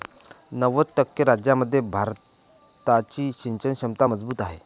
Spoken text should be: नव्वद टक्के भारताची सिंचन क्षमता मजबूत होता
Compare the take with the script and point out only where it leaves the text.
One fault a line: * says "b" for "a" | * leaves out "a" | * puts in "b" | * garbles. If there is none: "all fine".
* puts in "राज्यांमध्ये"
* says "आहे" for "होता"